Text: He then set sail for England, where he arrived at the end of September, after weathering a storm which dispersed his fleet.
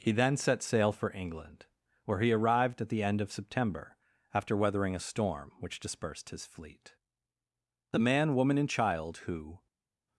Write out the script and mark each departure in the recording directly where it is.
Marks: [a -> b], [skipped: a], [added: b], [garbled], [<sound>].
He then set sail for England, where he arrived at the end of September, after weathering a storm which dispersed his fleet. [added: The man woman and child who]